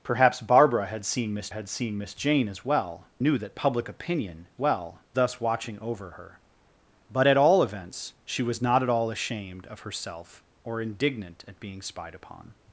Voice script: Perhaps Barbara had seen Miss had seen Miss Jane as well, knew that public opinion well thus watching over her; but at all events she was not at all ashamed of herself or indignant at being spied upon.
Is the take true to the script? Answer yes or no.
yes